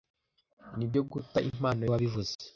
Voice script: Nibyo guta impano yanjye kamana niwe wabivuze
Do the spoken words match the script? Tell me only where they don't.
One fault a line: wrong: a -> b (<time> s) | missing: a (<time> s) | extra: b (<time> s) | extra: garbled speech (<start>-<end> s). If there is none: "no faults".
missing: yanjye kamana niwe (1.9 s)